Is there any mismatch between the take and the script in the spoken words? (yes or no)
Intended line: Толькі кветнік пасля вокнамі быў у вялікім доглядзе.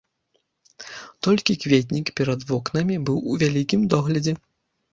yes